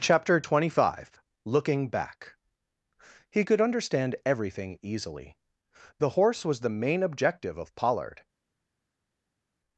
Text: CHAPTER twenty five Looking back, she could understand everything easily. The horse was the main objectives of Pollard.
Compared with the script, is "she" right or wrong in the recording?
wrong